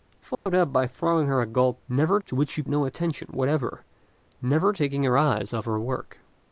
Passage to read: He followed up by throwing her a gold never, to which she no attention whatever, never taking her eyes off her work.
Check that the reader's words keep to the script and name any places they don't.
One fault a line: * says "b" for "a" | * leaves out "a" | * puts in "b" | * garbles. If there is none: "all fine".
all fine